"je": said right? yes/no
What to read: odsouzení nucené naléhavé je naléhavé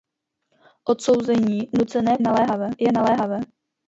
yes